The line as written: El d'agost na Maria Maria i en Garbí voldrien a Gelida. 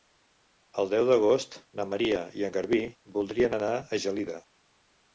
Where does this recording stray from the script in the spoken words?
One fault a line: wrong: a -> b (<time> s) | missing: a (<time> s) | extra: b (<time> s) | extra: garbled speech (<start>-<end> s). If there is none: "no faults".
extra: deu (0.9 s)
missing: Maria (2.2 s)
extra: anar (3.6 s)